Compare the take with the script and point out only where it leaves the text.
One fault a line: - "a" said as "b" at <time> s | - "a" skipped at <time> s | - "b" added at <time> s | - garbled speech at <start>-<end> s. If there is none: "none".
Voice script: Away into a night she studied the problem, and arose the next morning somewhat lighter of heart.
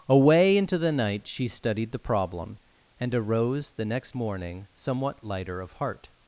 - "a" said as "the" at 0.8 s